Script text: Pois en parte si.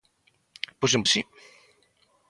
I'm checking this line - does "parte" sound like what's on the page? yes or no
no